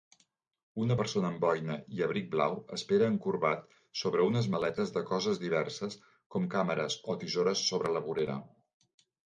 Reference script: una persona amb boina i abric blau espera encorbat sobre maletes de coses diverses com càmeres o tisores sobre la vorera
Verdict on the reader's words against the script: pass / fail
fail